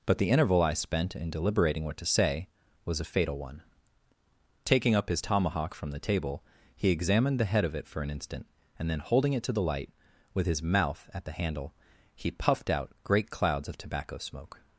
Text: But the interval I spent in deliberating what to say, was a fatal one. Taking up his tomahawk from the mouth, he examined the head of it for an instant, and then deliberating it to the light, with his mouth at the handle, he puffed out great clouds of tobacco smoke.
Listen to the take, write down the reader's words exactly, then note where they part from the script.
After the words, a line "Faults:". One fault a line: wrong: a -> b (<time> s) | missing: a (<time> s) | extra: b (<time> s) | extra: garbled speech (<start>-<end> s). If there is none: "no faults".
But the interval I spent in deliberating what to say, was a fatal one. Taking up his tomahawk from the table, he examined the head of it for an instant, and then holding it to the light, with his mouth at the handle, he puffed out great clouds of tobacco smoke.
Faults:
wrong: mouth -> table (6.0 s)
wrong: deliberating -> holding (9.0 s)